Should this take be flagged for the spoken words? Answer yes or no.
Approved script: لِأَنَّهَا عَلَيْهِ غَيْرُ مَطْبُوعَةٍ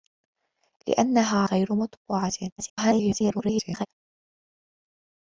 yes